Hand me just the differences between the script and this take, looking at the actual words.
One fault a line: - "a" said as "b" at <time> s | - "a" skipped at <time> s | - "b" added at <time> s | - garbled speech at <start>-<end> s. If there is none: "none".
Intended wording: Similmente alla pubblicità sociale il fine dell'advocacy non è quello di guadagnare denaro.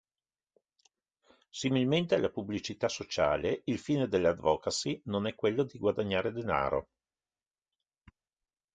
none